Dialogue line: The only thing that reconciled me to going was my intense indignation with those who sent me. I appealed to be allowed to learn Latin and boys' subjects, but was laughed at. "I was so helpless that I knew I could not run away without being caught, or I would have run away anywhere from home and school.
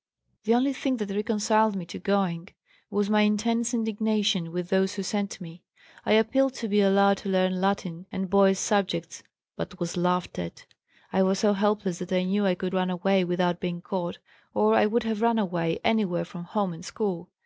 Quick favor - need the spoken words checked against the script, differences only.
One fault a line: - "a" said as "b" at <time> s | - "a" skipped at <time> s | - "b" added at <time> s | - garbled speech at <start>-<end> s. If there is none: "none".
- "not" skipped at 12.7 s